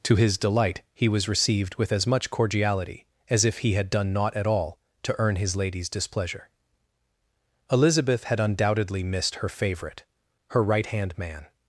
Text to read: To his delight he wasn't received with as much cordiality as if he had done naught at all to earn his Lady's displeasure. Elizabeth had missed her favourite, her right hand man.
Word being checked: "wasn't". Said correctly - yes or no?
no